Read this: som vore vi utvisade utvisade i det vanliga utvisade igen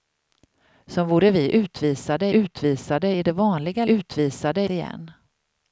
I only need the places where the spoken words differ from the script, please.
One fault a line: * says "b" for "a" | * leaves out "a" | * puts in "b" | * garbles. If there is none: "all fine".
all fine